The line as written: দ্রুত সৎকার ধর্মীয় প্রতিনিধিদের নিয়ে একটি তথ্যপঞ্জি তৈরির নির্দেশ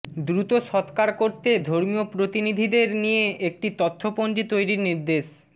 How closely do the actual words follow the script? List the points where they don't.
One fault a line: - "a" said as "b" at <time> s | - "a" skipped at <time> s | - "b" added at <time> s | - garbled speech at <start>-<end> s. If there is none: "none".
- "করতে" added at 1.1 s